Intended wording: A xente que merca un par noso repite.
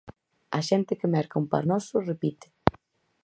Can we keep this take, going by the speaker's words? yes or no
yes